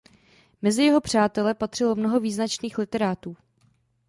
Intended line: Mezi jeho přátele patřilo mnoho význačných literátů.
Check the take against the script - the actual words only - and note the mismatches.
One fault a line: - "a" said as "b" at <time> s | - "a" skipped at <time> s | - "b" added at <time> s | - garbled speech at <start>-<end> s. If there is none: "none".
none